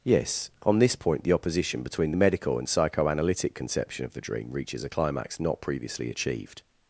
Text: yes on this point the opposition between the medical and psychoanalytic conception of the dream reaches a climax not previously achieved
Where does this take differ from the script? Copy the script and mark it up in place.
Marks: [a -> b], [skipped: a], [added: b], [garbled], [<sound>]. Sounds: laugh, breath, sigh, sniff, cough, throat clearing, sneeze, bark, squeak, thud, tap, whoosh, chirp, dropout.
yes on this point the opposition between the medical and psychoanalytic conception of the dream reaches a climax not previously achieved